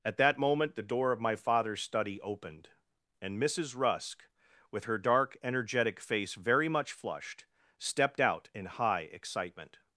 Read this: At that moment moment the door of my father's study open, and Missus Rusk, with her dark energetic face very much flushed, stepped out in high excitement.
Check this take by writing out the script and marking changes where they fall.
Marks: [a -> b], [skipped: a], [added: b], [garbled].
At that moment [skipped: moment] the door of my father's study [open, -> opened] and Missus Rusk, with her dark energetic face very much flushed, stepped out in high excitement.